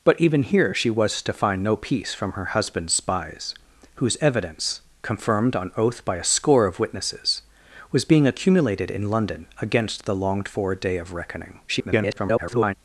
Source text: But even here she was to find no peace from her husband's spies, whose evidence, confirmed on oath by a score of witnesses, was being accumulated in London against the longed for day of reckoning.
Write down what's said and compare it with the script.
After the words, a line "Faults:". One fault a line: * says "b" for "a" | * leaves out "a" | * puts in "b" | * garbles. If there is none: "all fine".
But even here she was to find no peace from her husband's spies, whose evidence, confirmed on oath by a score of witnesses, was being accumulated in London against the longed for day of reckoning. [garbled]
Faults:
* garbles